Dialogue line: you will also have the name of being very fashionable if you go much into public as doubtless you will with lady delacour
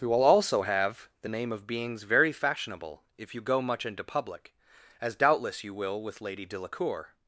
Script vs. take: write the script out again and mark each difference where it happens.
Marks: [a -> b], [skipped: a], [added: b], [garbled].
you will also have the name of [being -> beings] very fashionable if you go much into public as doubtless you will with lady delacour